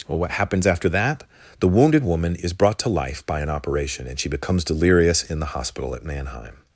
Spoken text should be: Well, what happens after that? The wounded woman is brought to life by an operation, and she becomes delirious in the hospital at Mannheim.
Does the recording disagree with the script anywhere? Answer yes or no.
no